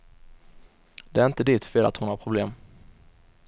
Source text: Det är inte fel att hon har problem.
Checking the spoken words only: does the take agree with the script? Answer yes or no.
no